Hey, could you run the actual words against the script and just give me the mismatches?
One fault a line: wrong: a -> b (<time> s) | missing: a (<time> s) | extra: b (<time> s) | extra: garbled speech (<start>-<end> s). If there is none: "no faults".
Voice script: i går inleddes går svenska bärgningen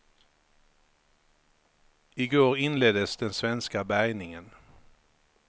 wrong: går -> den (3.2 s)